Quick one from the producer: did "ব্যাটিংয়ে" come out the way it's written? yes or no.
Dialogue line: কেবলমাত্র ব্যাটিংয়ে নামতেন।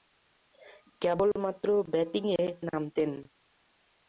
yes